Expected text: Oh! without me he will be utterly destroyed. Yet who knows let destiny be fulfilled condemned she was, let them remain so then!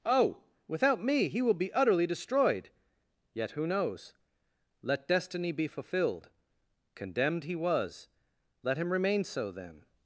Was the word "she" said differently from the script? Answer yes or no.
yes